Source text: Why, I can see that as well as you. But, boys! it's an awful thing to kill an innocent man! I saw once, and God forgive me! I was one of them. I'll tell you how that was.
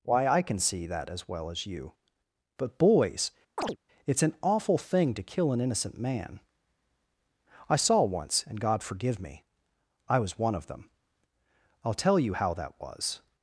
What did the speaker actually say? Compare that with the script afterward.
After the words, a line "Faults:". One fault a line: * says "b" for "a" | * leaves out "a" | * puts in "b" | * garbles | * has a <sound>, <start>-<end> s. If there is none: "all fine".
Why, I can see that as well as you. But, boys! it's an awful thing to kill an innocent man! I saw once, and God forgive me! I was one of them. I'll tell you how that was.
Faults:
* has a chirp, 3.6-3.8 s